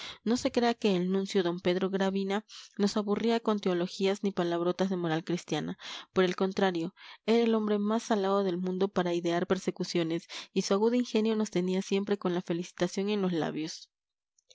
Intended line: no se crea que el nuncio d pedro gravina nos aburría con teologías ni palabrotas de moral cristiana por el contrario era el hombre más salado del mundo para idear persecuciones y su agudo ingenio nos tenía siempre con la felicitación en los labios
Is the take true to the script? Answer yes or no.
yes